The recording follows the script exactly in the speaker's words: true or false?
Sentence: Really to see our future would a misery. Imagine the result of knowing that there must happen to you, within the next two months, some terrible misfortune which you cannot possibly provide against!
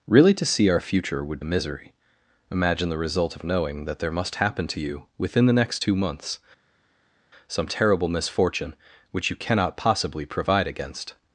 true